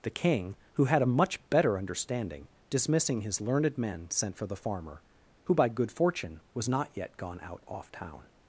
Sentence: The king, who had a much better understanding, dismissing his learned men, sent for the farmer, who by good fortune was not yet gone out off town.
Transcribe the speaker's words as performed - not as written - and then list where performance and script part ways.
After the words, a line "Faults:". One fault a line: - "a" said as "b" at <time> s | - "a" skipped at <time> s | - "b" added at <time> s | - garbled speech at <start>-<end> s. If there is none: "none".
The king, who had a much better understanding, dismissing his learned men, sent for the farmer, who by good fortune was not yet gone out off town.
Faults:
none